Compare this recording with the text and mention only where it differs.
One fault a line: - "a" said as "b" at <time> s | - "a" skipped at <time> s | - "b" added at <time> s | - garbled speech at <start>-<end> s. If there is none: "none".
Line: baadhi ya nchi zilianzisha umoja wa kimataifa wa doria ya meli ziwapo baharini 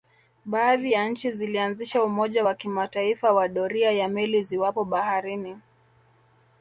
none